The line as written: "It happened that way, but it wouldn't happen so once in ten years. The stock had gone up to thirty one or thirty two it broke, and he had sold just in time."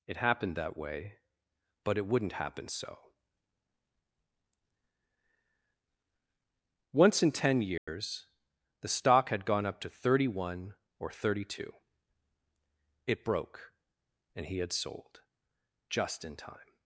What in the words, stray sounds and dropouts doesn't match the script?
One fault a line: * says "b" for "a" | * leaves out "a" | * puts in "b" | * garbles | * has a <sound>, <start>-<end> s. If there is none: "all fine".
* has a dropout, 7.8-7.9 s